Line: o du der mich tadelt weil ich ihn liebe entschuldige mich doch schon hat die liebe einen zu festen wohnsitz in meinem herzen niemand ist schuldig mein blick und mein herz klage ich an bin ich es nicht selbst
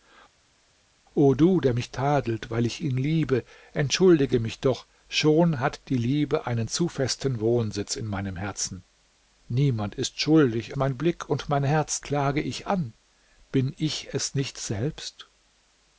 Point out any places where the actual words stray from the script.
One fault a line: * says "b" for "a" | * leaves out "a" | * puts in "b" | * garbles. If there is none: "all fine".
all fine